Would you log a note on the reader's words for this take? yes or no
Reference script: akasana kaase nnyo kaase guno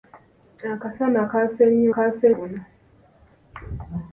no